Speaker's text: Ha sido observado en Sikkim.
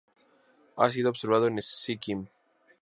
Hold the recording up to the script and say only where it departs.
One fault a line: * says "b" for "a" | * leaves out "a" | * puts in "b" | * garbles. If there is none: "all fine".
all fine